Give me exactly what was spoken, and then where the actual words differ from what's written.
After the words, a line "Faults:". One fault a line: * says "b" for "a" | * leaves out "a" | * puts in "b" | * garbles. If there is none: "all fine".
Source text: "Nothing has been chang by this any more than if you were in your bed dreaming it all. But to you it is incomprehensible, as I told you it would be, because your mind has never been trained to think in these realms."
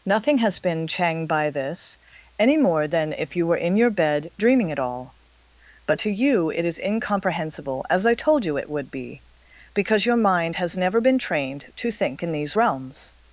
"Nothing has been chang by this any more than if you were in your bed dreaming it all. But to you it is incomprehensible, as I told you it would be, because your mind has never been trained to think in these realms."
Faults:
all fine